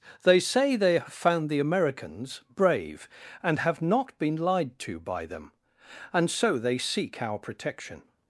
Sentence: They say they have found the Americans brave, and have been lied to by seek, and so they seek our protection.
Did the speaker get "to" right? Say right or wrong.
right